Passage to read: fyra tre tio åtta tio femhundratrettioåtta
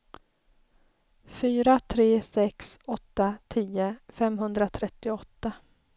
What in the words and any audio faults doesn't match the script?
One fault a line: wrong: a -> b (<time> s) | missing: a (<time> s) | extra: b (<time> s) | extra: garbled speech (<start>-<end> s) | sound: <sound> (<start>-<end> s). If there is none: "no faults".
wrong: tio -> sex (2.2 s)